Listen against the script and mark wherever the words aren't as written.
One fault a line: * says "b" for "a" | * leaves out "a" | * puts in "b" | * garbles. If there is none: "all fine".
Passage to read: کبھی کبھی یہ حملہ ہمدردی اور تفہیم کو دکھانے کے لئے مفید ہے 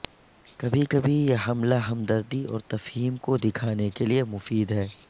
all fine